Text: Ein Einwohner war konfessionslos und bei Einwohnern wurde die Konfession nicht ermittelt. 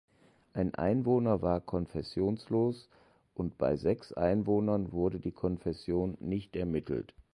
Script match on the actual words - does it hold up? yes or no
no